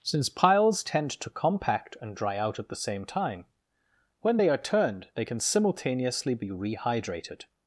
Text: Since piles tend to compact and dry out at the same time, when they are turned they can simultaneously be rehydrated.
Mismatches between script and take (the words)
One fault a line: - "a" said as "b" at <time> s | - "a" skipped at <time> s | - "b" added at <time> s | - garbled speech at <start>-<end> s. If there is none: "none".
none